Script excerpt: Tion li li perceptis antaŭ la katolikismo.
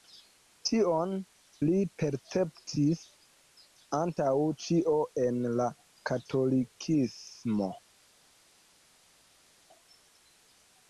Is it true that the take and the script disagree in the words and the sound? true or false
true